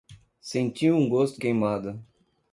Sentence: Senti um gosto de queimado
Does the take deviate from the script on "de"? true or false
true